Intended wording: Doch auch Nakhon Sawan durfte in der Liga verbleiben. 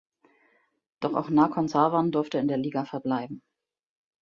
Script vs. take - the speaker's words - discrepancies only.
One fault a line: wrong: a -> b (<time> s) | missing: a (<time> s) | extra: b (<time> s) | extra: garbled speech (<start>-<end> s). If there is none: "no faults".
no faults